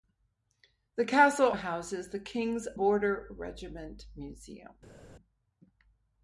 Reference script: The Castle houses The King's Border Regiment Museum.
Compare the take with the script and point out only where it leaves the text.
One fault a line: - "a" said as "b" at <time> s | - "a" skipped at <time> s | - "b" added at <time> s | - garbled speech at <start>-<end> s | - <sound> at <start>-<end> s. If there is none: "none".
none